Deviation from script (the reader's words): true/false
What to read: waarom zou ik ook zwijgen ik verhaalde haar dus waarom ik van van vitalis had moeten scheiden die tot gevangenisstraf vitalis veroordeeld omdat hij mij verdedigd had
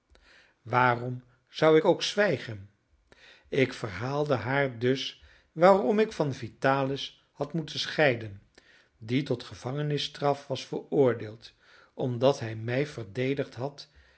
true